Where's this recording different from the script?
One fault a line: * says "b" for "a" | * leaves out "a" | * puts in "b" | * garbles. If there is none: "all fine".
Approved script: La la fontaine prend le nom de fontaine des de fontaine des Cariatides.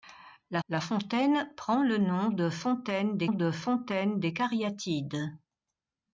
all fine